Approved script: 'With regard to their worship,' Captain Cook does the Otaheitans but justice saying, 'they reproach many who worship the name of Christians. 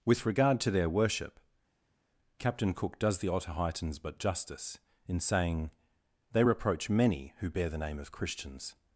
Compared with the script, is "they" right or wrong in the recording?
right